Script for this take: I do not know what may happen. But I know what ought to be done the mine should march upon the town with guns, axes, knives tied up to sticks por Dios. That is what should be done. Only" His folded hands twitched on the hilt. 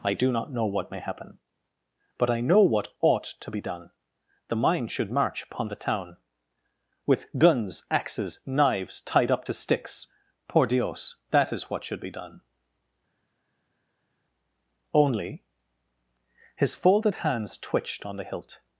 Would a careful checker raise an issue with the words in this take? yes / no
no